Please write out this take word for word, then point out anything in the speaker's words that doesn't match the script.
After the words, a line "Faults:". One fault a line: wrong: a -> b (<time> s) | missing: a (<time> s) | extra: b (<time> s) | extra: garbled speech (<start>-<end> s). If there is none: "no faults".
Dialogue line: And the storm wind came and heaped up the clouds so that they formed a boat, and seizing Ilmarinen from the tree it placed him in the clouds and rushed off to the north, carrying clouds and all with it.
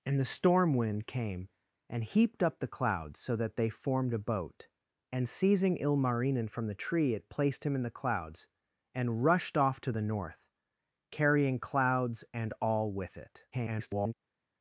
And the storm wind came and heaped up the clouds so that they formed a boat, and seizing Ilmarinen from the tree it placed him in the clouds and rushed off to the north, carrying clouds and all with it. [garbled]
Faults:
extra: garbled speech (13.5-14.1 s)